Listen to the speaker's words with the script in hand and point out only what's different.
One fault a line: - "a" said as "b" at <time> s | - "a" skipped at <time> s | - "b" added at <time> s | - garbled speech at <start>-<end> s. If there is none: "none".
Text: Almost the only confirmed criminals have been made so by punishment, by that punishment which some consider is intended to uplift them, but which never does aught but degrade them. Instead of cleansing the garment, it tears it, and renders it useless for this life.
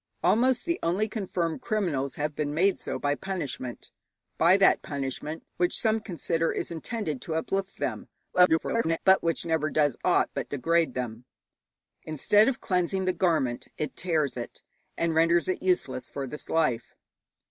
- garbled speech at 8.3-9.0 s